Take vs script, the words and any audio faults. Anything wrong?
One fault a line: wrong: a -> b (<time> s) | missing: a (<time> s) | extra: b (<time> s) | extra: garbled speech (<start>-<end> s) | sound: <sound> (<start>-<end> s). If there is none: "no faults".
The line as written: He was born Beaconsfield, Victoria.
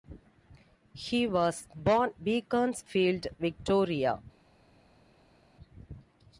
no faults